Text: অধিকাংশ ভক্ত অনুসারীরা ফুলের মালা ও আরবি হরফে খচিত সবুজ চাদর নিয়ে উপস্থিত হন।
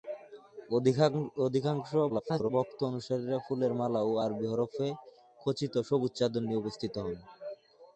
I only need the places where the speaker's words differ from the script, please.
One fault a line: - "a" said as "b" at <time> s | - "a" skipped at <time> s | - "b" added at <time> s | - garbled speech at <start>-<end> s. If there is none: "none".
- garbled speech at 2.1-2.5 s